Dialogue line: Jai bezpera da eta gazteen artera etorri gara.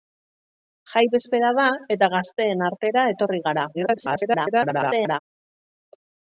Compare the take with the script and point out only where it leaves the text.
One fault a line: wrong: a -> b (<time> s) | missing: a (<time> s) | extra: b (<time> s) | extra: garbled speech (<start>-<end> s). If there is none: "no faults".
extra: garbled speech (3.7-5.2 s)